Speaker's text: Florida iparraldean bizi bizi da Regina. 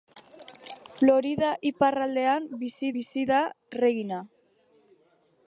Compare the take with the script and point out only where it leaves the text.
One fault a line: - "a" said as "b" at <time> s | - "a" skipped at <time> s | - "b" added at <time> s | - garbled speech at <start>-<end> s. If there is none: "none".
none